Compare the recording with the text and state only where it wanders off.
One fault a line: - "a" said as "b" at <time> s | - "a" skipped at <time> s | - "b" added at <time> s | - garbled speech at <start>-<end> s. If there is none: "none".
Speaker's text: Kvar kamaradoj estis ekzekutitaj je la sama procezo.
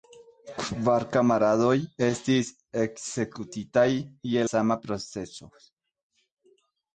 - "la" skipped at 4.5 s